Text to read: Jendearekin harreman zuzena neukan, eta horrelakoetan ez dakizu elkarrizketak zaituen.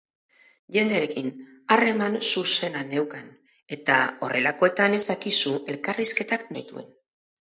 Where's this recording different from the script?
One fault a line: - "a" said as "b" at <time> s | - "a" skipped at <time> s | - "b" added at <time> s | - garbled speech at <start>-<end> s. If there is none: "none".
none